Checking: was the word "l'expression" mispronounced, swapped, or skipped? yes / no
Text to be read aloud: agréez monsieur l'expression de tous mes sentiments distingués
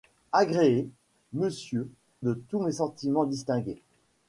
yes